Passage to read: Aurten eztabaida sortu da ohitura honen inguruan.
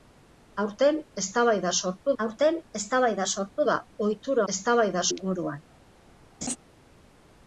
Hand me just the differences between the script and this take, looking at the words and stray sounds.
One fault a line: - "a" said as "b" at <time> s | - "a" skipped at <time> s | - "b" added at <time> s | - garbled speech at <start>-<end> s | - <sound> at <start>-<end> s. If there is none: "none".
- "aurten eztabaida sortu" added at 2.2 s
- "honen" said as "eztabaida" at 4.5 s
- laugh at 6.4-6.6 s